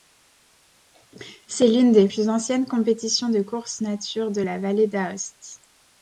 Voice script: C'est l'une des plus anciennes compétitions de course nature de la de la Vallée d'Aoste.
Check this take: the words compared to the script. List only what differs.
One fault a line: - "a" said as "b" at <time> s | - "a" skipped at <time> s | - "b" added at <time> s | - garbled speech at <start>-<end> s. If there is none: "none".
- "de la" skipped at 4.6 s